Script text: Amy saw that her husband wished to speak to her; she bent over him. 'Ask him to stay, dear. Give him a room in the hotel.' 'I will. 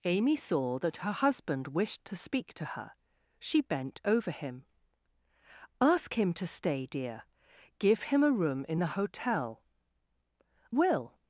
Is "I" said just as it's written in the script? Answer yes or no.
no